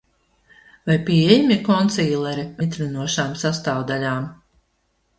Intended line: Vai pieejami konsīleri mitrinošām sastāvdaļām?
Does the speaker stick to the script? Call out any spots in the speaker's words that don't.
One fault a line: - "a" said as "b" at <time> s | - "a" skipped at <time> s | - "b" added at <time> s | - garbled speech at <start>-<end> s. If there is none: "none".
none